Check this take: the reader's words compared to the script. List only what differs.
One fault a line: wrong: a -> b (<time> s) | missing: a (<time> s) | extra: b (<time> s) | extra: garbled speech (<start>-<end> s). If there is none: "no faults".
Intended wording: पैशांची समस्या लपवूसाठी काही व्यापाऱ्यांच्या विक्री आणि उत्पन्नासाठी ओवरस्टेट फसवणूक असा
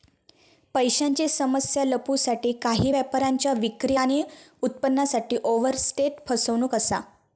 no faults